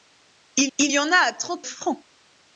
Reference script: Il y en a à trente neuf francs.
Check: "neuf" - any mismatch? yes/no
yes